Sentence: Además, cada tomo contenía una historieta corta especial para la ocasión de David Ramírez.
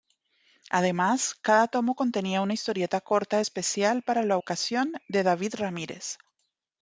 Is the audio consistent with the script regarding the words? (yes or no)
yes